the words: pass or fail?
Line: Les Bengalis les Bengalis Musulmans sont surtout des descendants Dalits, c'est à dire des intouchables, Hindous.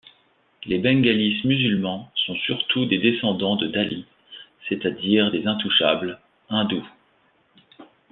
fail